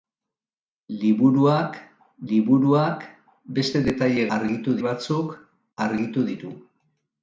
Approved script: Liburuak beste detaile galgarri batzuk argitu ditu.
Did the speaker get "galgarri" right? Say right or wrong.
wrong